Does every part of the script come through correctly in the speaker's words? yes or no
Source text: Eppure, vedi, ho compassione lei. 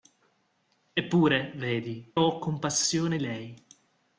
yes